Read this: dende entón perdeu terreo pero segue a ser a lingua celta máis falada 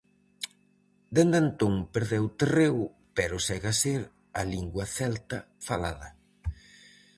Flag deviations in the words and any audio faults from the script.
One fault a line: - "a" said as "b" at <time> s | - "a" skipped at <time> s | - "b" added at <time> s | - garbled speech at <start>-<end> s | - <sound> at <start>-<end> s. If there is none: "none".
- "máis" skipped at 5.4 s